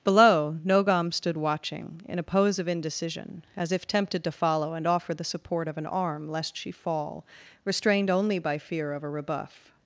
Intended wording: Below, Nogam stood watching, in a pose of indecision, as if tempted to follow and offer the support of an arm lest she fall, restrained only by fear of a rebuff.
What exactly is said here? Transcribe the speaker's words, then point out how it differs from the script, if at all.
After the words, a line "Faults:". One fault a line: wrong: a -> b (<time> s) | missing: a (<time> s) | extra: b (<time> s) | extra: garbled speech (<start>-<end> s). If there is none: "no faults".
Below, Nogam stood watching, in a pose of indecision, as if tempted to follow and offer the support of an arm lest she fall, restrained only by fear of a rebuff.
Faults:
no faults